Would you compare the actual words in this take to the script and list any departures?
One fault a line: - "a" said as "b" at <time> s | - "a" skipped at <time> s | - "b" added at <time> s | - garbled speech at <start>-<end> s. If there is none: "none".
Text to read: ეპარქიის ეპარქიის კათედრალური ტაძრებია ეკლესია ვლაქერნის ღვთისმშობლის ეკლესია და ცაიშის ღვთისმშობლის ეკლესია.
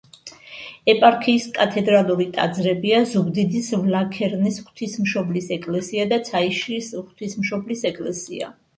- "ეპარქიის" skipped at 1.4 s
- "ეკლესია" said as "ზუგდიდის" at 3.1 s